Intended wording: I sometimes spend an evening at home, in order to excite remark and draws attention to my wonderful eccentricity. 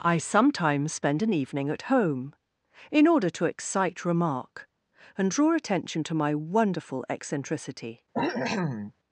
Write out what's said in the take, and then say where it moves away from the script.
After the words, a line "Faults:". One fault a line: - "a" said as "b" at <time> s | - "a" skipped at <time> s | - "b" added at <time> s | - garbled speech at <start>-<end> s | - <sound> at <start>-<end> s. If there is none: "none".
I sometimes spend an evening at home, in order to excite remark and draw attention to my wonderful eccentricity.
Faults:
- "draws" said as "draw" at 5.3 s
- cough at 8.1-8.9 s